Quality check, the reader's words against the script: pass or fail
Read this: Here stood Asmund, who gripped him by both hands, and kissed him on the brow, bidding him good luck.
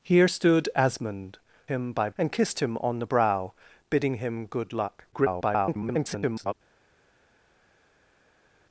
fail